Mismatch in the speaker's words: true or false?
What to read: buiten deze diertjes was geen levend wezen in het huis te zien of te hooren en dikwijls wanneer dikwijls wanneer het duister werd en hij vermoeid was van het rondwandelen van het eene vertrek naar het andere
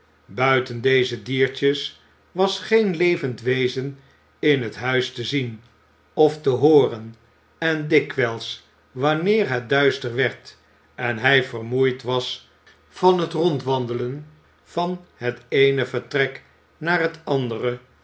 true